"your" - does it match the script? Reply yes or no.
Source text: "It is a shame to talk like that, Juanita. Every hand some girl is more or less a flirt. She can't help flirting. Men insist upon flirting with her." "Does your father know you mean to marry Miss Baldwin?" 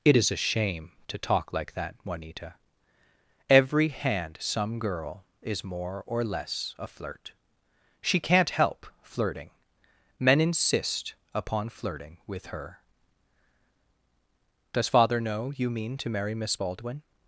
no